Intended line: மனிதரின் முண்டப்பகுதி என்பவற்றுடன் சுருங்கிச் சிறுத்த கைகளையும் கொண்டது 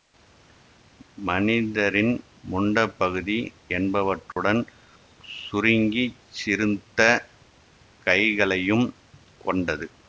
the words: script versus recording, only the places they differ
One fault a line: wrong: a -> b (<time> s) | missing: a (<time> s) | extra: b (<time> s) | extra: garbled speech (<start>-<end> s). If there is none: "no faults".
no faults